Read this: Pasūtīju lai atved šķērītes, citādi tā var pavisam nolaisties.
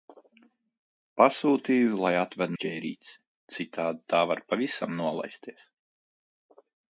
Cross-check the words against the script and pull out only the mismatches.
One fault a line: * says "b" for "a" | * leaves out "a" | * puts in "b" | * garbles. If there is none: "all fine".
all fine